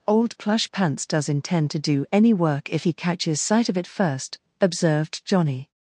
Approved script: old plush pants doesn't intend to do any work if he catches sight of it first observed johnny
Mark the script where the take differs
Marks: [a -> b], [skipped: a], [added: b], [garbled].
old plush pants [doesn't -> does] intend to do any work if he catches sight of it first observed johnny